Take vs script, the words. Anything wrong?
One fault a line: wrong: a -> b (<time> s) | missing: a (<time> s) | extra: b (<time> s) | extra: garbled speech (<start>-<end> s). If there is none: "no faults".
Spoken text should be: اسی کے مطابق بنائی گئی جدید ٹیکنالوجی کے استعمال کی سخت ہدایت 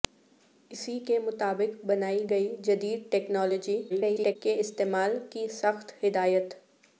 extra: garbled speech (3.9-4.4 s)